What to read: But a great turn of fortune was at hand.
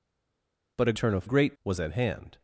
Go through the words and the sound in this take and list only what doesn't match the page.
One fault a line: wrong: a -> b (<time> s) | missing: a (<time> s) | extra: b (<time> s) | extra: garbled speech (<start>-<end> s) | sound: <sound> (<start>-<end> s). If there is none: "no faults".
missing: great (0.9 s)
wrong: fortune -> great (1.2 s)